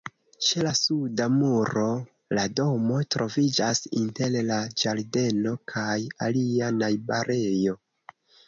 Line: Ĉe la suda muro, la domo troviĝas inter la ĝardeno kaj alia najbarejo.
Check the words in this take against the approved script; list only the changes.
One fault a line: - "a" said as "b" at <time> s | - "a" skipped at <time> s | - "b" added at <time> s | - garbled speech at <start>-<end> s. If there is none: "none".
none